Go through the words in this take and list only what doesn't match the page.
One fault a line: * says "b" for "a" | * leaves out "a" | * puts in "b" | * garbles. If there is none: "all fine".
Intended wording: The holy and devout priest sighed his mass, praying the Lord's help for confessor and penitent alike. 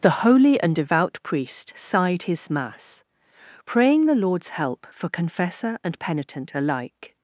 all fine